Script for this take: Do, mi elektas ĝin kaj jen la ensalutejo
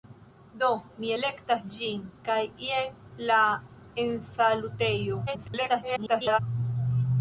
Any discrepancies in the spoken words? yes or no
yes